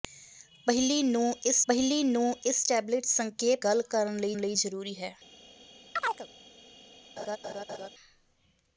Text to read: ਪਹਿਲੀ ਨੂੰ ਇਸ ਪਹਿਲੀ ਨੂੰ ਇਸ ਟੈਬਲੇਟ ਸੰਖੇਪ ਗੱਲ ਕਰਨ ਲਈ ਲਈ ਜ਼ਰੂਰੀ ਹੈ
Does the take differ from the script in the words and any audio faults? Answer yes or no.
yes